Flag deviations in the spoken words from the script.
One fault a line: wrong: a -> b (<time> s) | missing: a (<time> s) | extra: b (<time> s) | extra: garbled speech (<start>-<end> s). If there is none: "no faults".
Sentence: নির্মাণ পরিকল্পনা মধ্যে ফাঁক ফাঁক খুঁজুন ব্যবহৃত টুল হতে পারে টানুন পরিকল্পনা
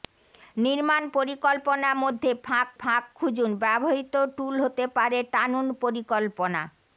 no faults